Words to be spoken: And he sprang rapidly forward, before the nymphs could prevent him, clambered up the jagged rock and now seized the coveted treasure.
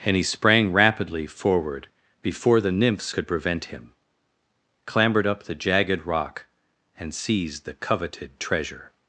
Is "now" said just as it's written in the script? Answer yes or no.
no